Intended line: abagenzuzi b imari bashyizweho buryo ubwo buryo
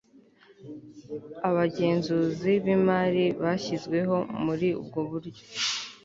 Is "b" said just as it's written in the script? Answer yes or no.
yes